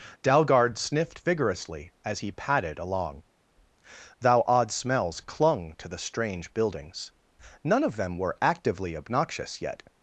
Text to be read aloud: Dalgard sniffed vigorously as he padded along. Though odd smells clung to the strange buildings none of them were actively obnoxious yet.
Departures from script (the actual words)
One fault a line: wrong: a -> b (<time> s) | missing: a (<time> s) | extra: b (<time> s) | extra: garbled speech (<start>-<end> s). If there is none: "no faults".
wrong: Though -> Thou (4.2 s)